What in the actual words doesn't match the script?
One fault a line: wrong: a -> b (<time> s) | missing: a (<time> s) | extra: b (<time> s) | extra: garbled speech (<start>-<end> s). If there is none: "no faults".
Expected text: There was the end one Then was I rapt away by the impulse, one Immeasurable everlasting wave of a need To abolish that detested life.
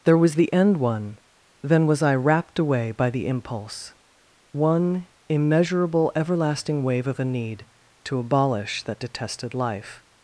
no faults